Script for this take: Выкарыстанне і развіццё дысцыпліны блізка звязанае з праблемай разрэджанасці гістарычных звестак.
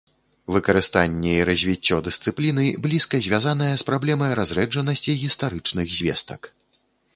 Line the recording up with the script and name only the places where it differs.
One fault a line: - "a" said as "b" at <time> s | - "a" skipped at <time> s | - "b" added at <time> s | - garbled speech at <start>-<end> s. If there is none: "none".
none